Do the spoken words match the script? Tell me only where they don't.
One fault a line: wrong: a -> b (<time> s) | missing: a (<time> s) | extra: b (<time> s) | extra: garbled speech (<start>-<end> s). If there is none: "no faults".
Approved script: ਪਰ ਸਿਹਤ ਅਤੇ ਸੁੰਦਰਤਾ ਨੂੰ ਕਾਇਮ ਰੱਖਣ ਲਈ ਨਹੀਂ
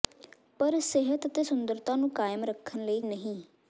no faults